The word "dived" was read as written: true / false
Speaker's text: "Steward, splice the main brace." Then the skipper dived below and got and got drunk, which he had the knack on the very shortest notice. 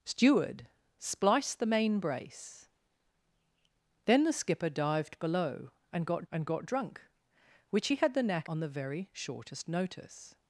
true